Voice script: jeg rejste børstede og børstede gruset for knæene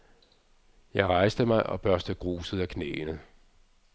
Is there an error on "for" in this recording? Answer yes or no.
yes